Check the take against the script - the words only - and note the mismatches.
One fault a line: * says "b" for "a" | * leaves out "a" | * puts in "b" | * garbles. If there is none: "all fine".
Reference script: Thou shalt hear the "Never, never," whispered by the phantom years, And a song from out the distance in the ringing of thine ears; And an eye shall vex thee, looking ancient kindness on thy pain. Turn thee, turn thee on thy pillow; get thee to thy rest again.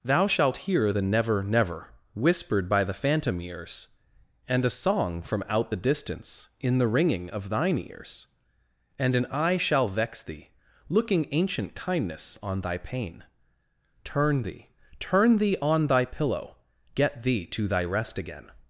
* says "ears" for "years"